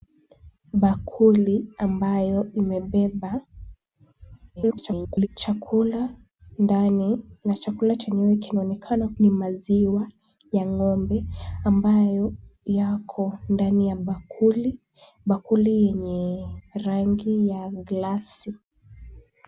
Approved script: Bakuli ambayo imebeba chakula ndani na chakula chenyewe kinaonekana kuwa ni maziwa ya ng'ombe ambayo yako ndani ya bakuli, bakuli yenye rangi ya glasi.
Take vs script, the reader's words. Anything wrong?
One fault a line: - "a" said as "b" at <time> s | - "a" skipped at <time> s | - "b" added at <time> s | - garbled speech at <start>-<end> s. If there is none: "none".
- garbled speech at 4.6-5.3 s
- "kuwa" skipped at 9.1 s